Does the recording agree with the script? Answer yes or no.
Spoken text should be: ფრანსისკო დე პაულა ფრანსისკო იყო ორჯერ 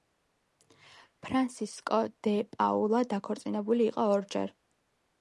no